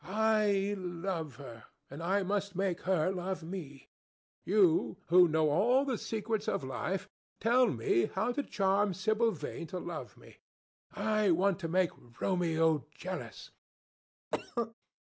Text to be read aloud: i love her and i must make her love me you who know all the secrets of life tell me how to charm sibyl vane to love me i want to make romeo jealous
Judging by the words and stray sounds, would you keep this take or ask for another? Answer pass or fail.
fail